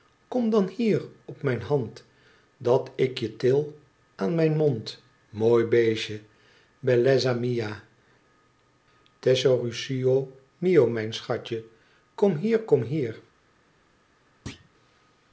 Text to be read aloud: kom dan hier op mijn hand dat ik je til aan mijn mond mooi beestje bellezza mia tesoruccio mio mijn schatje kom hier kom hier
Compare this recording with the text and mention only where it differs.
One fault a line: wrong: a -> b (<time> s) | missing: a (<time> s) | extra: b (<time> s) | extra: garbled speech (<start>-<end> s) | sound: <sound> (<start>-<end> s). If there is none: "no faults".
sound: thud (14.5-14.7 s)